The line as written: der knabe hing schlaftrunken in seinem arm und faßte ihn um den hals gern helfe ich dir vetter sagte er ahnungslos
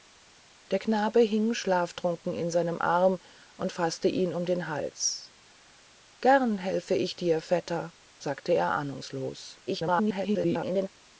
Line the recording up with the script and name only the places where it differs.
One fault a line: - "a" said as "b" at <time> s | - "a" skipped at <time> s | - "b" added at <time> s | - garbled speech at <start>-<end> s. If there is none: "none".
- garbled speech at 9.7-10.9 s